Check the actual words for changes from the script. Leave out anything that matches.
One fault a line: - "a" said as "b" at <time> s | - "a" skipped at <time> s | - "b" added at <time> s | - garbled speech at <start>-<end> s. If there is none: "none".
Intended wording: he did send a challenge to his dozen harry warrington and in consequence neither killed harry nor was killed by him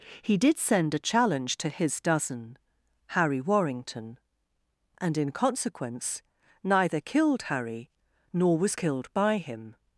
none